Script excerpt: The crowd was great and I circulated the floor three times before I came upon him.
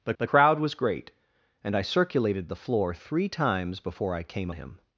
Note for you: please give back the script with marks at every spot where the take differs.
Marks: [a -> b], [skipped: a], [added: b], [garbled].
The [added: the] crowd was great and I circulated the floor three times before I came [skipped: upon] him.